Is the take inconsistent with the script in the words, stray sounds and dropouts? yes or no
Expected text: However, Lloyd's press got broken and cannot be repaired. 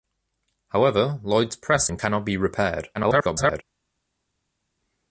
yes